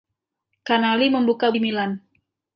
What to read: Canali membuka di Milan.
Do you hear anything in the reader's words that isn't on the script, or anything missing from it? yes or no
no